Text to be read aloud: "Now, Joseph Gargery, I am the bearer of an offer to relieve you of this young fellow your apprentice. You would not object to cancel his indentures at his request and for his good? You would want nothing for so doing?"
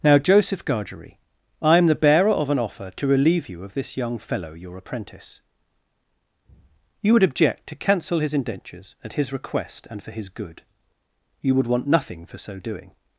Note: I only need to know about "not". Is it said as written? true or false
false